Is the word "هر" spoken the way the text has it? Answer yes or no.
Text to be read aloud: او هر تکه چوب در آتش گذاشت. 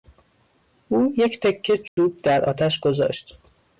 no